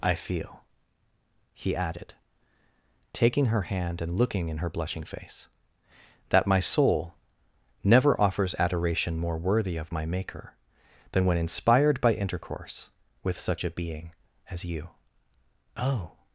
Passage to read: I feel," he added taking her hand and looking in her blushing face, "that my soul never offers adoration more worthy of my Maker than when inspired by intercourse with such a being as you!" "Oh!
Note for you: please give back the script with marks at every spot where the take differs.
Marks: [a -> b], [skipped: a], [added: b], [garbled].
I feel," he added taking her hand and looking in her blushing face, "that my soul never offers adoration more worthy of my Maker than when inspired by intercourse with such a being as you!" "Oh!